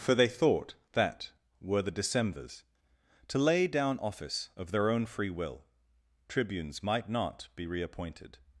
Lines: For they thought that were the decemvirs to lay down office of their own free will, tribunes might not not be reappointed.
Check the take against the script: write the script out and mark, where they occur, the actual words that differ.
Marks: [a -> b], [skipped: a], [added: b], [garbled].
For they thought that were the decemvirs to lay down office of their own free will, tribunes might not [skipped: not] be reappointed.